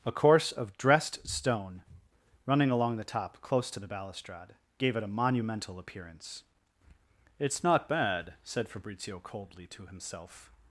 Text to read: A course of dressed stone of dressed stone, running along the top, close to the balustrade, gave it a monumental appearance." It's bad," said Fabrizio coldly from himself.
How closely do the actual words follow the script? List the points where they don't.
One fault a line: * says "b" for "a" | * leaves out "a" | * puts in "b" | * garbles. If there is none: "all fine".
* leaves out "of dressed stone"
* puts in "not"
* says "to" for "from"